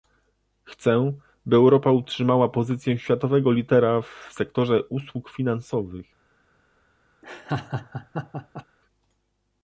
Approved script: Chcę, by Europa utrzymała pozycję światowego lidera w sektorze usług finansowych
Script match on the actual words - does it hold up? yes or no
yes